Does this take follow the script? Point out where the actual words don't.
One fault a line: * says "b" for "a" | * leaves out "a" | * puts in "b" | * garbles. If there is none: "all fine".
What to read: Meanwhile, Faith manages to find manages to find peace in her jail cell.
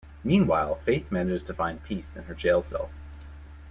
* leaves out "manages to find"